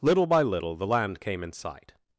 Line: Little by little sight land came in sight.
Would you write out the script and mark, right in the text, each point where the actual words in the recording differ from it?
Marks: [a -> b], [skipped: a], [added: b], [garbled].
Little by little [sight -> the] land came in sight.